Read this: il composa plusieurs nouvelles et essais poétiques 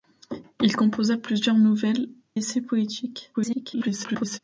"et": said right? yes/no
no